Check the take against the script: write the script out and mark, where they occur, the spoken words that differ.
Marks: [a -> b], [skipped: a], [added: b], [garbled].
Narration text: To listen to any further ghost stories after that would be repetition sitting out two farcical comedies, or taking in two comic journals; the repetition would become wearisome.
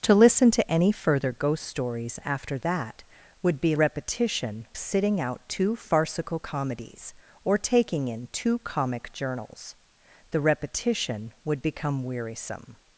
To listen to any further ghost stories after that would be repetition sitting out two farcical comedies, or taking in two comic journals; the repetition would become wearisome.